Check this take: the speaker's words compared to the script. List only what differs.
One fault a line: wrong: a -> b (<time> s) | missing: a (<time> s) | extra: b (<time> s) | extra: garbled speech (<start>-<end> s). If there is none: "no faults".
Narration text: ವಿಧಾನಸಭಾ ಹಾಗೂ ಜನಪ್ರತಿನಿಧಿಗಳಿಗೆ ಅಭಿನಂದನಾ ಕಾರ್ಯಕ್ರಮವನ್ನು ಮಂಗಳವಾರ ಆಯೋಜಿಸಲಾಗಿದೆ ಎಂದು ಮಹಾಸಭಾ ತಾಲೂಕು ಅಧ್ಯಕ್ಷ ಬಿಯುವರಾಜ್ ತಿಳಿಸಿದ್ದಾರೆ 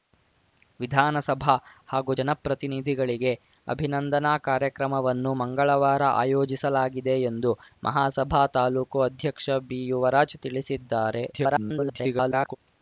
extra: garbled speech (11.3-12.6 s)